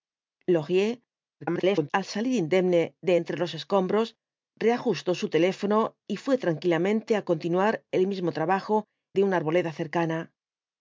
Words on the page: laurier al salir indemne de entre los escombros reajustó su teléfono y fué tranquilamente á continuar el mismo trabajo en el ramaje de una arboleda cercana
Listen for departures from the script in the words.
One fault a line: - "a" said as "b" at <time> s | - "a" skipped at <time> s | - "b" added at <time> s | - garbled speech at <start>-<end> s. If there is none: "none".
- garbled speech at 1.4-1.9 s
- "en el ramaje" skipped at 8.8 s